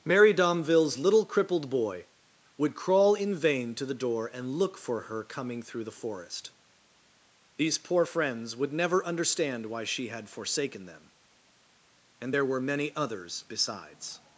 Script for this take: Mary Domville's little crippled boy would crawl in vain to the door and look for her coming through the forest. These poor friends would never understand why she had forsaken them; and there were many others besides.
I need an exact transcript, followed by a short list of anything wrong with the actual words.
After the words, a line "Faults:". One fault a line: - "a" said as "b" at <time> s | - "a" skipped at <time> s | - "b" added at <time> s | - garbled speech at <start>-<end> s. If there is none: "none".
Mary Domville's little crippled boy would crawl in vain to the door and look for her coming through the forest. These poor friends would never understand why she had forsaken them; and there were many others besides.
Faults:
none